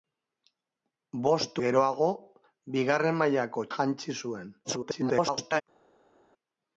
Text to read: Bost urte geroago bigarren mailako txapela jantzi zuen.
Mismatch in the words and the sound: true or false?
true